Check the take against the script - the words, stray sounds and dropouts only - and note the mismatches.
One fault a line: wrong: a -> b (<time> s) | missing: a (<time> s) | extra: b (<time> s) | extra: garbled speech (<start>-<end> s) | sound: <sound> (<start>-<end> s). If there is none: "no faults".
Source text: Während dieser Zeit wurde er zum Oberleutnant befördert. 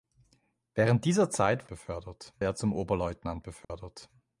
wrong: wurde -> befördert (1.7 s)
sound: dropout (3.6-3.7 s)